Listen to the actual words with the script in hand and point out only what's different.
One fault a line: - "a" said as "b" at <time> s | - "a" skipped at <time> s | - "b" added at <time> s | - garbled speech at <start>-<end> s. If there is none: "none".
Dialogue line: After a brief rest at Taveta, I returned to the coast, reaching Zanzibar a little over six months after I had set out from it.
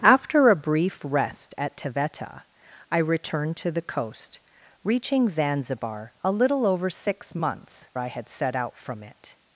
- "after" skipped at 7.9 s